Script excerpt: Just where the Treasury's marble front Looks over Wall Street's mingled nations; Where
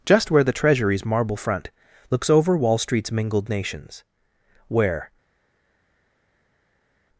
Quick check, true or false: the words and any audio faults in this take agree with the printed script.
true